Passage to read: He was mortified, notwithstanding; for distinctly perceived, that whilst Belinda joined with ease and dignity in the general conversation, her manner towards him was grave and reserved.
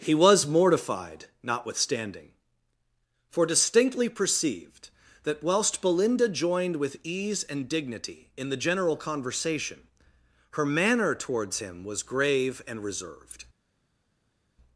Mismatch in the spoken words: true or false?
false